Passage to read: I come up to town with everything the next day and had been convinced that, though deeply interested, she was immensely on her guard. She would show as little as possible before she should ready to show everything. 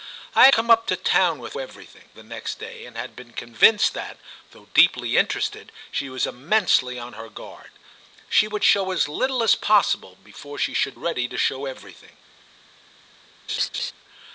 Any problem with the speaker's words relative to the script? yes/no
no